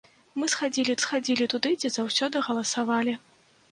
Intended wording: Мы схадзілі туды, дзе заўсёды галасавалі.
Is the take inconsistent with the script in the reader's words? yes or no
yes